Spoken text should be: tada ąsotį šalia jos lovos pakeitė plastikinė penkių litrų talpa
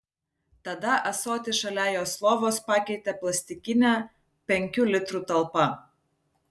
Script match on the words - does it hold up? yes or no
yes